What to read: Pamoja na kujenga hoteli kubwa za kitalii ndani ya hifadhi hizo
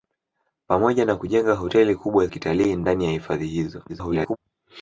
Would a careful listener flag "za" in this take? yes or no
yes